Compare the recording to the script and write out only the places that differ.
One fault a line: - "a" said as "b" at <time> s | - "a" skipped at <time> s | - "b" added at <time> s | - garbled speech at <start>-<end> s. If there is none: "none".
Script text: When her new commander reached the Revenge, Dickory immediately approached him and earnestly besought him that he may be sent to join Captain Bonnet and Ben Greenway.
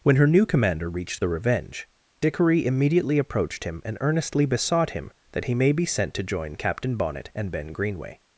none